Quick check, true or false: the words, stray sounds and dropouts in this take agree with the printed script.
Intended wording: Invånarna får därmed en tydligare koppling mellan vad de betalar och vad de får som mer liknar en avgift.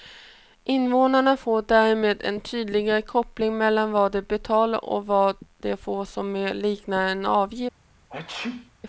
false